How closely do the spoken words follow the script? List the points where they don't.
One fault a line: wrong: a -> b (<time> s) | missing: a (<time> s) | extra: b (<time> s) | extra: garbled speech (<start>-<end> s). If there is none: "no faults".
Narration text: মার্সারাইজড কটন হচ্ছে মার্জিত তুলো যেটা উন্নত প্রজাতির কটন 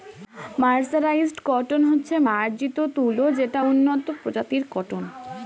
no faults